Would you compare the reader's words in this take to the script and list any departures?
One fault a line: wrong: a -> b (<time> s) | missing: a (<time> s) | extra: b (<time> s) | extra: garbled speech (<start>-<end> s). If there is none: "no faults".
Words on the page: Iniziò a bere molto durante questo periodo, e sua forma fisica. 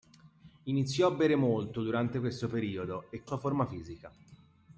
no faults